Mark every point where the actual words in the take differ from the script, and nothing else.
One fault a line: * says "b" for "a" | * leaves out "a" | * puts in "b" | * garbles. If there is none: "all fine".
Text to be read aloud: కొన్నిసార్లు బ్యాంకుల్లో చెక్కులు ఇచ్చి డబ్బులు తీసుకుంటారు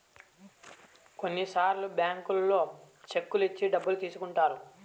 all fine